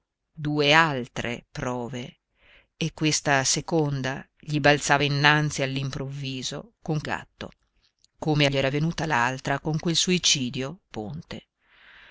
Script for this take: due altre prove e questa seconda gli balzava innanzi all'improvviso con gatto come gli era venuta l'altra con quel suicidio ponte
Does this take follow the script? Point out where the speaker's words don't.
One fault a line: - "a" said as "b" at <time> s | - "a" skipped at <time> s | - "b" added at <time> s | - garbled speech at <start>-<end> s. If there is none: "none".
none